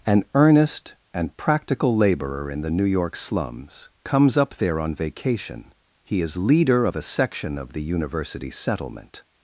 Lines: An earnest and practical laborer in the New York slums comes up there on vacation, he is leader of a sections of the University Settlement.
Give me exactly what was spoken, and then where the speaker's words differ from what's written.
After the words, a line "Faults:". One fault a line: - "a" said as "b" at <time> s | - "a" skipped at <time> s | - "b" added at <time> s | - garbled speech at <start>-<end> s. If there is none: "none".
An earnest and practical laborer in the New York slums comes up there on vacation, he is leader of a section of the University Settlement.
Faults:
- "sections" said as "section" at 7.0 s